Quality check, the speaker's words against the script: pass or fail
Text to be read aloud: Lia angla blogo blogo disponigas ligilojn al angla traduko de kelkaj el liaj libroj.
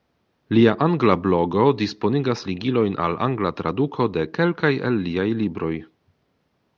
fail